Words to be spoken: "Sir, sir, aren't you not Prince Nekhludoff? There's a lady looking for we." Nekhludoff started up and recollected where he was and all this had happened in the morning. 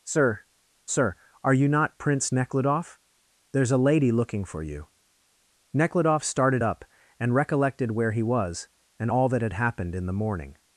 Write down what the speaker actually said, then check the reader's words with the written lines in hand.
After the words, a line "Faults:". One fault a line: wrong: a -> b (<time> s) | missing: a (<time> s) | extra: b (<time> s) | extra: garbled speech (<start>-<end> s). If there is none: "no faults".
"Sir, sir, are you not Prince Nekhludoff? There's a lady looking for you." Nekhludoff started up and recollected where he was and all that had happened in the morning.
Faults:
wrong: aren't -> are (1.4 s)
wrong: we -> you (4.6 s)
wrong: this -> that (9.3 s)